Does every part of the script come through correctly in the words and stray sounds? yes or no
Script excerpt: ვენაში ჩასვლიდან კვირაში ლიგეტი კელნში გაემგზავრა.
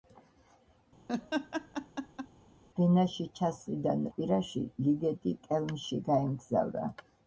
no